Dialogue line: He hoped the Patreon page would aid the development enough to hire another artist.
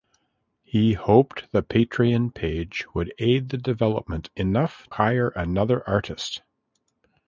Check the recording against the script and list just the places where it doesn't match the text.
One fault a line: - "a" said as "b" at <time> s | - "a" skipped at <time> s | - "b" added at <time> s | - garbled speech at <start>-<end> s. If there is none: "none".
- "to" skipped at 4.9 s